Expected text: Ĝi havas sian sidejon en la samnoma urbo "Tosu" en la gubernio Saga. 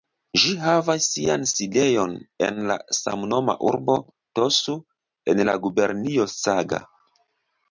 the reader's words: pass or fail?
pass